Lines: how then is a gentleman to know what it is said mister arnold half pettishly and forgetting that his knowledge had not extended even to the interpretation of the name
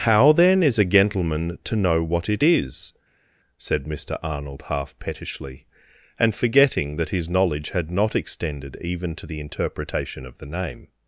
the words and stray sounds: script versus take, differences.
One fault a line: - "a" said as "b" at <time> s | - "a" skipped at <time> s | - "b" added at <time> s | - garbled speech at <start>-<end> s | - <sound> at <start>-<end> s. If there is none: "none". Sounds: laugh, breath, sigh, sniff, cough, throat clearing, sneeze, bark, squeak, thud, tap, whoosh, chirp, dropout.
none